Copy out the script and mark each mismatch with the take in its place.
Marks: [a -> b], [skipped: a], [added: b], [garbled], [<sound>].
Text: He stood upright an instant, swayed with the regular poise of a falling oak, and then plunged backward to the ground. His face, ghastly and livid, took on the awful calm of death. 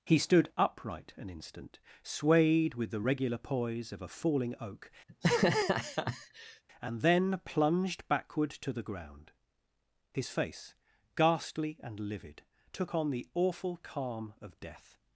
He stood upright an instant, swayed with the regular poise of a falling oak, [laugh] and then plunged backward to the ground. His face, ghastly and livid, took on the awful calm of death.